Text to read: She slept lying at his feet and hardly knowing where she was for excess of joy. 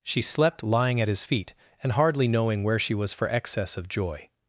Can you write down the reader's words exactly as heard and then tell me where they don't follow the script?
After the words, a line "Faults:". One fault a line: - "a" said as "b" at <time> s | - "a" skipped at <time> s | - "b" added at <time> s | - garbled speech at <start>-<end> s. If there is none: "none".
She slept lying at his feet and hardly knowing where she was for excess of joy.
Faults:
none